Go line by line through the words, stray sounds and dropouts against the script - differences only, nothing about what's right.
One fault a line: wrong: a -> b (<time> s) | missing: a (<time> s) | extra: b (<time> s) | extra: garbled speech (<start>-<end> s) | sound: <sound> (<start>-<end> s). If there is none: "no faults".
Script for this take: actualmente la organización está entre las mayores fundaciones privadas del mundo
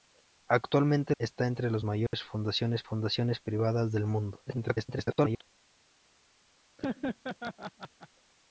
missing: la organización (1.1 s)
sound: dropout (2.1-2.1 s)
extra: fundaciones (2.8 s)
extra: garbled speech (4.5-5.4 s)
sound: laugh (6.8-8.1 s)